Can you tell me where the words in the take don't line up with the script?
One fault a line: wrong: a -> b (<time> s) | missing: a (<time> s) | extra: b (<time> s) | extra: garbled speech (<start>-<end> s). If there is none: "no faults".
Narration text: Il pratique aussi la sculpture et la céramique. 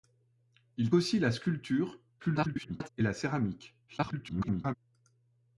missing: pratique (0.9 s)
extra: garbled speech (2.2-2.9 s)
extra: garbled speech (3.9-4.7 s)